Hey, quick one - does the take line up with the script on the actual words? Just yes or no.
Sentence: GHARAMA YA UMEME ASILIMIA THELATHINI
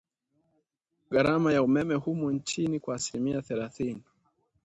no